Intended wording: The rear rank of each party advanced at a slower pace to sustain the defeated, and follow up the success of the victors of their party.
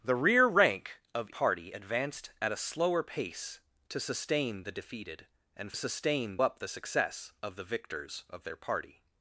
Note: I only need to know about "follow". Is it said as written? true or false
false